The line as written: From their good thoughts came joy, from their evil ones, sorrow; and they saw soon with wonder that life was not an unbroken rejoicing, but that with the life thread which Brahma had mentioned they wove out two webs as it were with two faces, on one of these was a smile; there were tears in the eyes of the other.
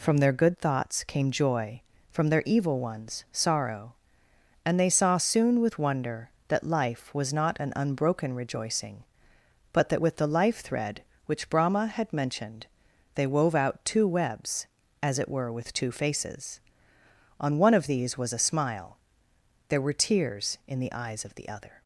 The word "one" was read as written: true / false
true